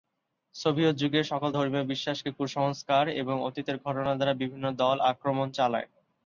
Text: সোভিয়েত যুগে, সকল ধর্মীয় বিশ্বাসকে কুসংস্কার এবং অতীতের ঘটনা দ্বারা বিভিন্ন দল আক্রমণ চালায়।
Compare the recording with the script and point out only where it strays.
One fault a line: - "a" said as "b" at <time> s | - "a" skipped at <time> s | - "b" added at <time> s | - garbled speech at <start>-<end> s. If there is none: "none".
none